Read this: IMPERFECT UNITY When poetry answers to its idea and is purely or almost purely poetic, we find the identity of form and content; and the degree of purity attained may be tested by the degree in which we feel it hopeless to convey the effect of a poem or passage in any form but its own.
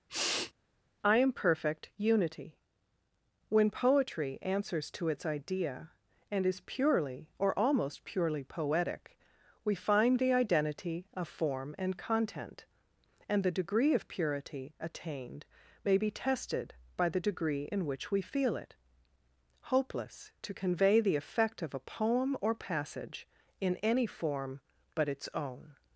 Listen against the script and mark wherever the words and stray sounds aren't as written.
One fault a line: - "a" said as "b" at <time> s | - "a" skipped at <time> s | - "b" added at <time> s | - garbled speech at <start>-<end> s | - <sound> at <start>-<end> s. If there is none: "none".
- sniff at 0.1-0.5 s
- "IMPERFECT" said as "I am perfect" at 1.0 s